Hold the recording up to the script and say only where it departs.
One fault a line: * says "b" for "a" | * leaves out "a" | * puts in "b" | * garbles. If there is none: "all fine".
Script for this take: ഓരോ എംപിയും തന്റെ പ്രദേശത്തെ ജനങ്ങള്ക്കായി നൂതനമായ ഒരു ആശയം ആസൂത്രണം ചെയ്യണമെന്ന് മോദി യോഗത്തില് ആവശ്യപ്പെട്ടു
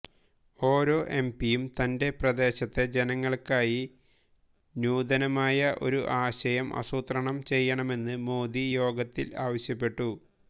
all fine